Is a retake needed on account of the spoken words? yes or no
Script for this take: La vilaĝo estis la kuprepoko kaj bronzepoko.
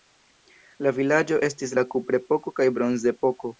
no